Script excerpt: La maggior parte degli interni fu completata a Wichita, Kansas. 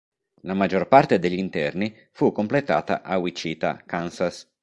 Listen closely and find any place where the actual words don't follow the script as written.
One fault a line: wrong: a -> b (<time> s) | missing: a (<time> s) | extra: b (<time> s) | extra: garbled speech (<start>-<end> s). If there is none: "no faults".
no faults